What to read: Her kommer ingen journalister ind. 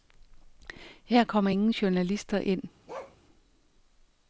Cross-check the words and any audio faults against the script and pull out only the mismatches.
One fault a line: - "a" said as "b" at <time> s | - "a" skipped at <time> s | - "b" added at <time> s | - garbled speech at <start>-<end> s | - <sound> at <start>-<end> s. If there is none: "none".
- bark at 2.9-3.2 s